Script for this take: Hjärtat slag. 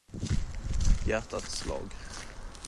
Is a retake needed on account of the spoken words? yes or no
no